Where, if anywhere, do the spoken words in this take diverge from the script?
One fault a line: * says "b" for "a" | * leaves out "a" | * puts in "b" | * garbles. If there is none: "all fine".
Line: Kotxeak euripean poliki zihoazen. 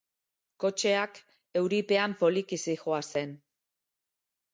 all fine